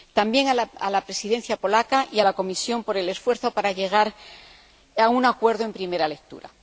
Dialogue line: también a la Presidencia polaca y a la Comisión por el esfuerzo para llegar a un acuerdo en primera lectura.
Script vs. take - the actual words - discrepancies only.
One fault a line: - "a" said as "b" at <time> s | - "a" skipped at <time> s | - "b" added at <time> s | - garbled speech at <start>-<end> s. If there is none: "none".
none